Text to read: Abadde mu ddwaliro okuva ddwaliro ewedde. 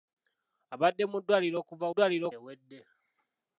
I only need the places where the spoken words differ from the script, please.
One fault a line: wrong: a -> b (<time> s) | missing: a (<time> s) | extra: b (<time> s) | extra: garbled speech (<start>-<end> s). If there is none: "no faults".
no faults